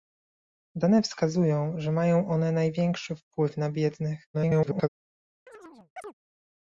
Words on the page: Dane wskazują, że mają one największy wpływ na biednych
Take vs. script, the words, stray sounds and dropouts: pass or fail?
fail